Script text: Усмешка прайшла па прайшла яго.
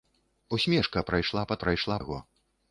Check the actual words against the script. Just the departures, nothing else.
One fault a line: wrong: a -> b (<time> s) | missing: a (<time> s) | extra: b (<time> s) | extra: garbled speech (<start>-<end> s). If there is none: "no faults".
no faults